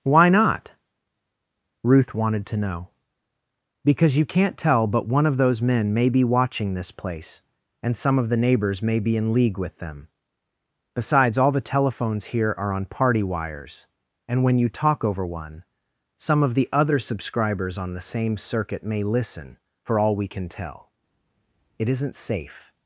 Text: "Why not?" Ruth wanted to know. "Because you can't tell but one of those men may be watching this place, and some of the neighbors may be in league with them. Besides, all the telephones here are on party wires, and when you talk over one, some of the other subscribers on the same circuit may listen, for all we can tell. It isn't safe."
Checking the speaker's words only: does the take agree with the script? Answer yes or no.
yes